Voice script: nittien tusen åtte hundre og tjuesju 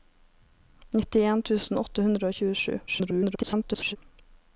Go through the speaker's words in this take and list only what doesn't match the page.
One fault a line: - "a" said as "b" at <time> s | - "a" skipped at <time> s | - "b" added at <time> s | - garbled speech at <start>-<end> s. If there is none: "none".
- garbled speech at 2.9-4.0 s